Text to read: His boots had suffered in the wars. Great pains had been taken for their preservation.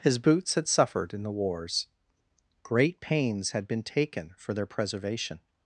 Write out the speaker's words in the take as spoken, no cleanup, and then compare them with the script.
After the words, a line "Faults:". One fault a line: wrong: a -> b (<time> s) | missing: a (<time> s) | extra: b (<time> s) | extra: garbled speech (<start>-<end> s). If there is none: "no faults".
His boots had suffered in the wars. Great pains had been taken for their preservation.
Faults:
no faults